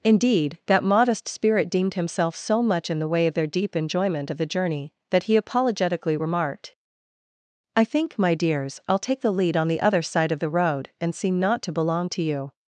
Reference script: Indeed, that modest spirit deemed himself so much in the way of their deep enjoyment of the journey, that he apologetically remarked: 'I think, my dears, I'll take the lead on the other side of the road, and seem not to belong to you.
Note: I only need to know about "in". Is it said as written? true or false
true